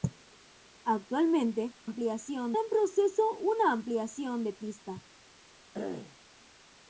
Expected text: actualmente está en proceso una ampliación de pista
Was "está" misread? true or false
true